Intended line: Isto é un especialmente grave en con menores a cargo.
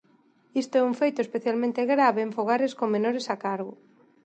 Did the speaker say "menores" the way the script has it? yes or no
yes